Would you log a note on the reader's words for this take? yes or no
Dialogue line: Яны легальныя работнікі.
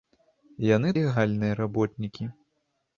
no